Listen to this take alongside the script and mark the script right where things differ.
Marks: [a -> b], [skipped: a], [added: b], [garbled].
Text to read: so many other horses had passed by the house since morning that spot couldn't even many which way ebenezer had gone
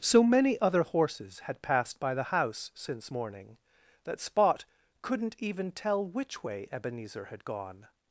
so many other horses had passed by the house since morning that spot couldn't even [many -> tell] which way ebenezer had gone